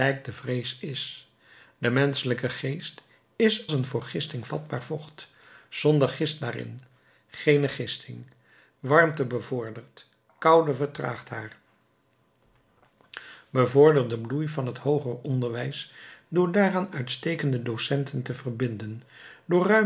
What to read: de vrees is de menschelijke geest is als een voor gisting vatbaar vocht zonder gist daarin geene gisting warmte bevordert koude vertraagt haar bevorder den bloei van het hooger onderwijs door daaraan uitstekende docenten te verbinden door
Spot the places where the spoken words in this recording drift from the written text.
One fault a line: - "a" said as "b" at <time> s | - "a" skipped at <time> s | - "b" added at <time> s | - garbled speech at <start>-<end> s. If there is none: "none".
- "als" skipped at 3.7 s